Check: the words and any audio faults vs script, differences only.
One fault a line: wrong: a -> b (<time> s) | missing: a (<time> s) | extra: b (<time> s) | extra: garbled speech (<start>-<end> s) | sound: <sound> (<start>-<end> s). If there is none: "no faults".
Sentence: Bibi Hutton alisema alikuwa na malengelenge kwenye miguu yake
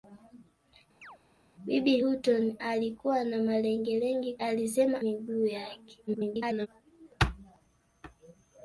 sound: chirp (1.0-1.2 s)
missing: alisema (2.6 s)
wrong: kwenye -> alisema (4.4 s)
extra: garbled speech (6.1-6.7 s)